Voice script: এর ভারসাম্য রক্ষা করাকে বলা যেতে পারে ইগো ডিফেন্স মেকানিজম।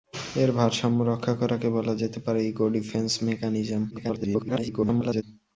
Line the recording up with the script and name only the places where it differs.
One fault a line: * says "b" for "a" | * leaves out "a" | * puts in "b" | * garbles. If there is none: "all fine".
* garbles